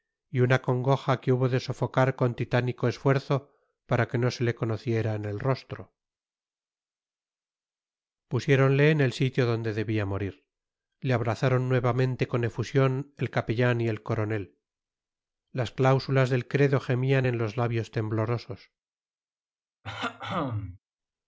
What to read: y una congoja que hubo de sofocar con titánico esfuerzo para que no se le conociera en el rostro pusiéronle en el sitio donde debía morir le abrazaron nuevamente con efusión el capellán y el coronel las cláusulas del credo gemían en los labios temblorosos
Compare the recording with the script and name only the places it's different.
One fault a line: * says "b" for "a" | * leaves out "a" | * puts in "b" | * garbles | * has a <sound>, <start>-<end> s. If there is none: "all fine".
* has a throat clearing, 19.8-20.8 s